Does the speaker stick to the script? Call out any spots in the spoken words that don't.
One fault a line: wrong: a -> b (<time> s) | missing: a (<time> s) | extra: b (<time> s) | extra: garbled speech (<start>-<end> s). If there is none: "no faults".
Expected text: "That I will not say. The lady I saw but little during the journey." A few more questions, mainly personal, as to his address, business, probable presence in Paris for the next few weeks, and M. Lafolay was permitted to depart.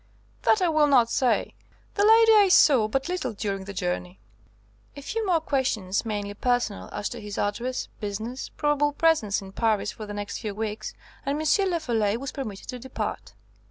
no faults